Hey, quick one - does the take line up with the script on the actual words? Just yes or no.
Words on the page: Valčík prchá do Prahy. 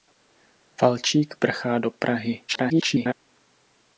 no